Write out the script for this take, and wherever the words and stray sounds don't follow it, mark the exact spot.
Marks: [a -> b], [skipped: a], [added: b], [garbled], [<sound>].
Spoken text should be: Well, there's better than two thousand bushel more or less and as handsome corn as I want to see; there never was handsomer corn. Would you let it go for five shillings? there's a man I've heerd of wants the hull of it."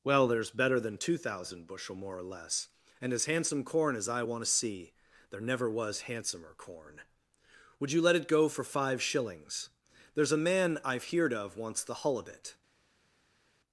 Well, there's better than two thousand bushel more or less and as handsome corn as I want to see; there never was handsomer corn. Would you let it go for five shillings? there's a man I've heerd of wants the hull of it."